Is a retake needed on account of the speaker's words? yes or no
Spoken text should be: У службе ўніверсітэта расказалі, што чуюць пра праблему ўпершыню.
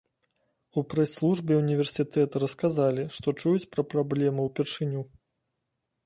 yes